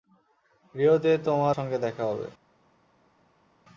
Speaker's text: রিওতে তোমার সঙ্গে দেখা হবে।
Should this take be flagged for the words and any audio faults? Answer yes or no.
no